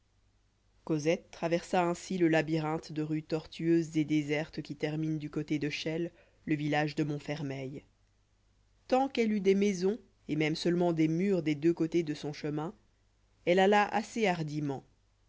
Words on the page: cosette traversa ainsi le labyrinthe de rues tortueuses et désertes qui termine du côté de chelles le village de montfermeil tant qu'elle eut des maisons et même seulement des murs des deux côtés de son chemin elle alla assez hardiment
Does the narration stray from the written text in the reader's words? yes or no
no